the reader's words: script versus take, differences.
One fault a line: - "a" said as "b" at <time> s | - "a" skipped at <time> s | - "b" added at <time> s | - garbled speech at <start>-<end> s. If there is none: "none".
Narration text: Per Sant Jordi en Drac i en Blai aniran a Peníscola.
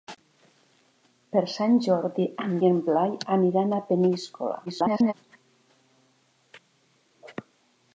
- "Drac" skipped at 2.5 s
- garbled speech at 4.7-5.1 s